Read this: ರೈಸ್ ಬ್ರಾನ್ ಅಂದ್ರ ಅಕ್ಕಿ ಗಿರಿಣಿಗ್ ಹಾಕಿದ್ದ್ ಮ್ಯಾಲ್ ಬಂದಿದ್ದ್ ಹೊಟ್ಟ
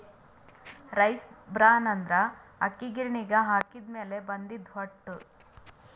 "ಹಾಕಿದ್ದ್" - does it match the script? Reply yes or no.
yes